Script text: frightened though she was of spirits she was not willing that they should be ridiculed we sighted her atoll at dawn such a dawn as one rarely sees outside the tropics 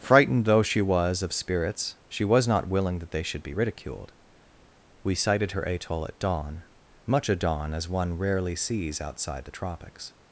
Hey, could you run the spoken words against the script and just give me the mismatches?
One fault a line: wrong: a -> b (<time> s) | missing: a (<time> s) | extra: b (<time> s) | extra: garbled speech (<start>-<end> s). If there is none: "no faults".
wrong: such -> much (7.1 s)